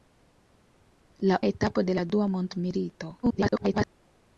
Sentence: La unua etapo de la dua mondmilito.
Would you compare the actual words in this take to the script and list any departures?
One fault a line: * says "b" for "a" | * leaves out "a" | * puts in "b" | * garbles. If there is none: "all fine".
* leaves out "unua"
* garbles